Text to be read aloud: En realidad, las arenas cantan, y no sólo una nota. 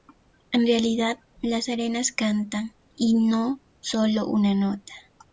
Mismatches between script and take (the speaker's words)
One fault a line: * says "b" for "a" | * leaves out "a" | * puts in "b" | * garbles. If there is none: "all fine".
all fine